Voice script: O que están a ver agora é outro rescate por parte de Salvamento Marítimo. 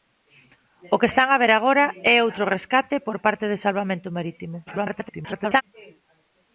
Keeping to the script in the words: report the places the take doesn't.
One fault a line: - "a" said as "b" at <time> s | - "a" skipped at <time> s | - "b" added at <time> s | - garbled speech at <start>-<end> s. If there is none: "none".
- garbled speech at 4.7-5.6 s